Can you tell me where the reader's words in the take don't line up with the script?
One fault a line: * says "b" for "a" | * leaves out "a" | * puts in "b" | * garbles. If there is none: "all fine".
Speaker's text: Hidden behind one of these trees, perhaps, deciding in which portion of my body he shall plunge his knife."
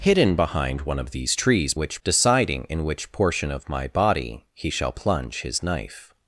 * says "which" for "perhaps"